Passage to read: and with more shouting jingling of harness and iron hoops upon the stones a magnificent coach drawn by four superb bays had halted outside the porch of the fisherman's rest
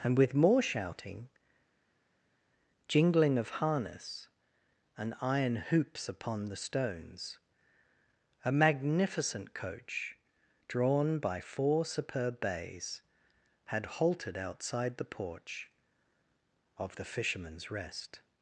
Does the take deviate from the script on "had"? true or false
false